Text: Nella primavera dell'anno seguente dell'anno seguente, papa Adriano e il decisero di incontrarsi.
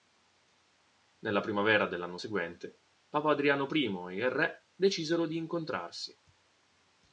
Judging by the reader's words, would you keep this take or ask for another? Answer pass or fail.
fail